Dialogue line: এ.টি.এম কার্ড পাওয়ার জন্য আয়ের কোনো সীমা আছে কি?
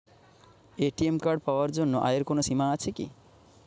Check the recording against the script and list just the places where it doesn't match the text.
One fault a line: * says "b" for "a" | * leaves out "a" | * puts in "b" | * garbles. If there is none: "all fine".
all fine